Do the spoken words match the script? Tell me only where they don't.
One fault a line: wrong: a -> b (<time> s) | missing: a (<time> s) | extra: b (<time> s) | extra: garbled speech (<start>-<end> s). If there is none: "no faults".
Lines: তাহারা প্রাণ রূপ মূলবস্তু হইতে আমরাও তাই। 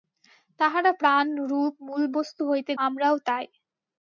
no faults